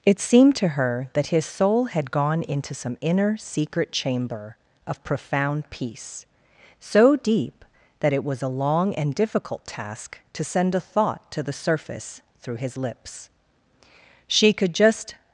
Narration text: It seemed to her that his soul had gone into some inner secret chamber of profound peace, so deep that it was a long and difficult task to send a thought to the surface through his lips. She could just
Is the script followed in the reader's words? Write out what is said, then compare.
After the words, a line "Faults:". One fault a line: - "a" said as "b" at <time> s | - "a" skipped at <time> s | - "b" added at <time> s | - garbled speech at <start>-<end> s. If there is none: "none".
It seemed to her that his soul had gone into some inner secret chamber of profound peace, so deep that it was a long and difficult task to send a thought to the surface through his lips. She could just
Faults:
none